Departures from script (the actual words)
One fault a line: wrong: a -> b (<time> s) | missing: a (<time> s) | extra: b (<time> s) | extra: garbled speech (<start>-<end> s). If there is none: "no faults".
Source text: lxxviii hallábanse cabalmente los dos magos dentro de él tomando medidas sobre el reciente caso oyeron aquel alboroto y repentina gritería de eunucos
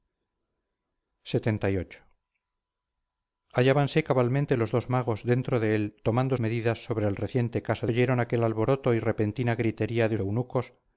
no faults